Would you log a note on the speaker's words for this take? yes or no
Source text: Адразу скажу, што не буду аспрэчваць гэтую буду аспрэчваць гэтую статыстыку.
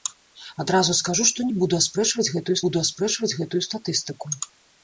no